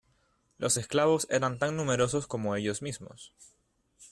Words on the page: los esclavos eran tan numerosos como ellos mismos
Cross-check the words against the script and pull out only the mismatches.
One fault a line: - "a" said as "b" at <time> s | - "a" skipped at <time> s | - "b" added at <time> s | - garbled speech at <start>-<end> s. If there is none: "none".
none